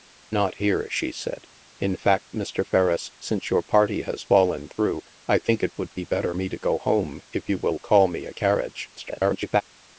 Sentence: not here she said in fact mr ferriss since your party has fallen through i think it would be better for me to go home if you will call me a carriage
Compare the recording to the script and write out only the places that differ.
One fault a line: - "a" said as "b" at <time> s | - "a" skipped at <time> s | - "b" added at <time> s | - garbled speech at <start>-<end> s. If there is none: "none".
- "for" skipped at 6.3 s
- garbled speech at 9.0-9.6 s